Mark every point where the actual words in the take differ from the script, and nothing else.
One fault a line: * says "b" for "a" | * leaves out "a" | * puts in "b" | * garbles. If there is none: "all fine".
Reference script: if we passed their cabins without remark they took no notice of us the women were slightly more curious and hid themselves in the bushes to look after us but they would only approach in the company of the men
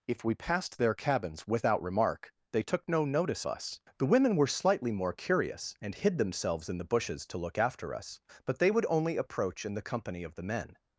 * leaves out "of"